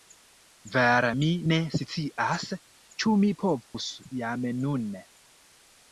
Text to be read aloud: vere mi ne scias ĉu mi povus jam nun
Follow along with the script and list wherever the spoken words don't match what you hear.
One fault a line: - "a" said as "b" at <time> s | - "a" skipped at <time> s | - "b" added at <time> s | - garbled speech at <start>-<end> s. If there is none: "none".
none